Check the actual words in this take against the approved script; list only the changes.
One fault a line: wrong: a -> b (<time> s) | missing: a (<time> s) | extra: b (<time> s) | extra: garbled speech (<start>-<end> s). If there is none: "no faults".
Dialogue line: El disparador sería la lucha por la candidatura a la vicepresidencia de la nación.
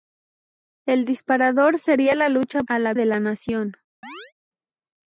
missing: por la candidatura (2.6 s)
missing: vicepresidencia (2.9 s)